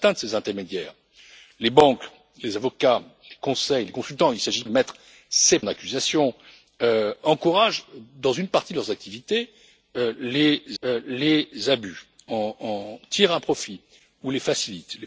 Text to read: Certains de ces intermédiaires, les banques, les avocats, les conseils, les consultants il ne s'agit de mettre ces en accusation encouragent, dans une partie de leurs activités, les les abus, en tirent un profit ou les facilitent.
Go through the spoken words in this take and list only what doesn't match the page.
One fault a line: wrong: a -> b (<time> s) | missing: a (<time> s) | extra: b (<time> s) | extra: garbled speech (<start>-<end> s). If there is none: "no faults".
no faults